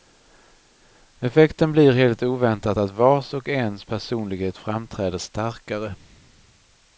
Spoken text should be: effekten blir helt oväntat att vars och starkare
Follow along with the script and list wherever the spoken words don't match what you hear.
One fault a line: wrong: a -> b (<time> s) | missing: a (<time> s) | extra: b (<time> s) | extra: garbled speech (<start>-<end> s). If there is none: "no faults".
extra: ens personlighet framträder (3.5 s)